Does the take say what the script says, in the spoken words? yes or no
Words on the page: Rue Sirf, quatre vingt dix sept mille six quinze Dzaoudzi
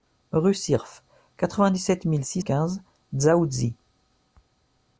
yes